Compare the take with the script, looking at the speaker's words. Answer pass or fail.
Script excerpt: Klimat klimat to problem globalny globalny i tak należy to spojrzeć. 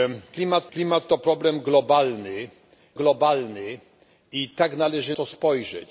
pass